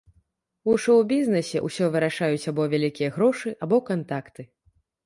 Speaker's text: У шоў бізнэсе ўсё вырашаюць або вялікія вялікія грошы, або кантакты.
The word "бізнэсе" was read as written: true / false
true